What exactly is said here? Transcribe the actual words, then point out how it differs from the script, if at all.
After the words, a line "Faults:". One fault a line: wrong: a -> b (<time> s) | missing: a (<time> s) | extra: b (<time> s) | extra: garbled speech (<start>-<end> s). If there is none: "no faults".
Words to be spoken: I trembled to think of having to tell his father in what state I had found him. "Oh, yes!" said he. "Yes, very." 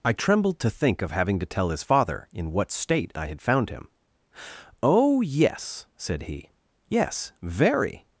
I trembled to think of having to tell his father in what state I had found him. "Oh, yes!" said he. "Yes, very."
Faults:
no faults